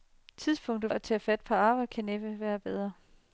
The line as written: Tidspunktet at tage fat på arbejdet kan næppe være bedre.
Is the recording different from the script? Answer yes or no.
no